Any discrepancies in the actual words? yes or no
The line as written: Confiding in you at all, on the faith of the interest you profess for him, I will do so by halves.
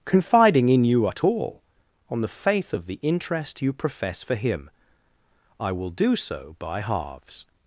no